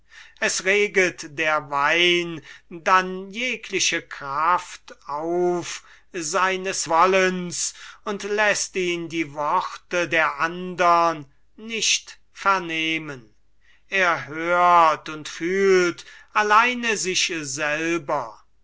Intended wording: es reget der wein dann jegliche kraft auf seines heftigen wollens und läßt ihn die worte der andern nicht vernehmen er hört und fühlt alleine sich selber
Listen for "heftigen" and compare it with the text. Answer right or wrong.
wrong